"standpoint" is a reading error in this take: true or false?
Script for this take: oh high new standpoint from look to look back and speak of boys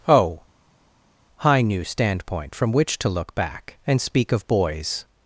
false